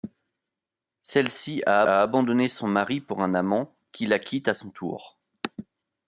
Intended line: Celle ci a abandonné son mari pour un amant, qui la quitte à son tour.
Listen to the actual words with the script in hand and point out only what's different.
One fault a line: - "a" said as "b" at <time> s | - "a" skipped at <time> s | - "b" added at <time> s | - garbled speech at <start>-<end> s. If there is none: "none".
- "a" added at 1.9 s